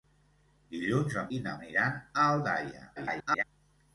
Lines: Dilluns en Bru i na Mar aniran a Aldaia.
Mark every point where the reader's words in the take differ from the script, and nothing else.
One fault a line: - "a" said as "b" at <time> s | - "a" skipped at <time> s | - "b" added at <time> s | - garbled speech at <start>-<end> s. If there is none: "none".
- "Bru" skipped at 1.3 s
- "Mar" skipped at 1.6 s
- garbled speech at 3.0-3.4 s